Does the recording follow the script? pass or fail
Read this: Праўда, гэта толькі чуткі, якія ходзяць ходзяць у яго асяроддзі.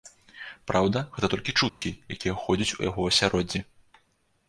fail